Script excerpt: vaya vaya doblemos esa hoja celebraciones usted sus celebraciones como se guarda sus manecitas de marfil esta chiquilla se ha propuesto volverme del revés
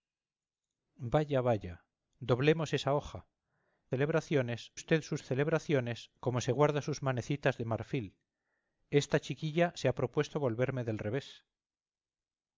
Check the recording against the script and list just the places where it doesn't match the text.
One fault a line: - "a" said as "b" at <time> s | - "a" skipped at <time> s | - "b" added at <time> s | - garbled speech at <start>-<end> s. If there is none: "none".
none